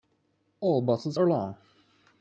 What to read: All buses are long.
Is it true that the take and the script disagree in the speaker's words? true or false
false